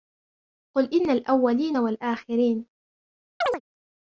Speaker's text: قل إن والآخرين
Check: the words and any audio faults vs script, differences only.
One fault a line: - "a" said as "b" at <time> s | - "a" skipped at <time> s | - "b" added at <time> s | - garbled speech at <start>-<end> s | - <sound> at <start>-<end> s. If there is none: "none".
- "الأولين" added at 1.1 s
- chirp at 3.4-3.6 s